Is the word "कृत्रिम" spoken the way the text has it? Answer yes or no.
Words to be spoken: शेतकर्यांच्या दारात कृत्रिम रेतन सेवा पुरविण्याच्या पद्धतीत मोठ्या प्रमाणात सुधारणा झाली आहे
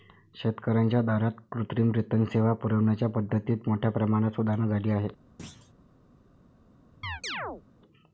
yes